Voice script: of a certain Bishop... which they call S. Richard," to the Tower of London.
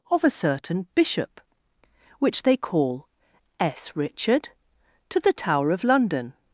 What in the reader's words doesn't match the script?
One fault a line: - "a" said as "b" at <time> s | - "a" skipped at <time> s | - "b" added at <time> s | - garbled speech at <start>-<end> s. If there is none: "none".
none